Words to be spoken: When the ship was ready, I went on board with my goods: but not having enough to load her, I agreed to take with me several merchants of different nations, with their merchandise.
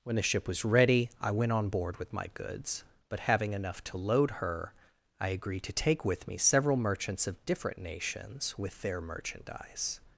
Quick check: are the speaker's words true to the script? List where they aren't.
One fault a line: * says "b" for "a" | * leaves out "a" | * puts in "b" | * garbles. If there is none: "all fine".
* leaves out "not"